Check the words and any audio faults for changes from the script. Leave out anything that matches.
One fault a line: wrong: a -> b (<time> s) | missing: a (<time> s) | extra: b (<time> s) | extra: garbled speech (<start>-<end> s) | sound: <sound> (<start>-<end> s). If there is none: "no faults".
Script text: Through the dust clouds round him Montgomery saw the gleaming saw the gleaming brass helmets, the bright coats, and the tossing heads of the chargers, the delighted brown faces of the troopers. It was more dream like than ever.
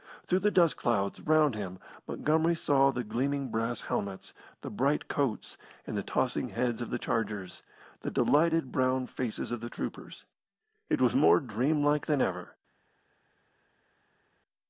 missing: saw the gleaming (3.5 s)